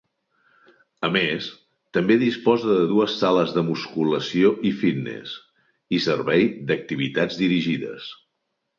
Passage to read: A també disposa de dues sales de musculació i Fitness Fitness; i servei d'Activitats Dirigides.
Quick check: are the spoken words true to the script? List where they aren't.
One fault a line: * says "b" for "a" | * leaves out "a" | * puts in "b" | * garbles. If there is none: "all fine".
* puts in "més"
* leaves out "Fitness"